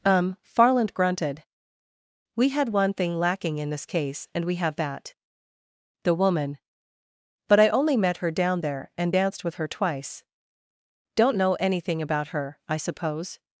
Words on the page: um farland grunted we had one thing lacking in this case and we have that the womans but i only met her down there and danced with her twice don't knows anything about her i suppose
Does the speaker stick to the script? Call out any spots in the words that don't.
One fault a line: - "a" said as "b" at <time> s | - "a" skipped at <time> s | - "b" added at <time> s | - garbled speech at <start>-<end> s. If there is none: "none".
- "womans" said as "woman" at 6.1 s
- "knows" said as "know" at 11.4 s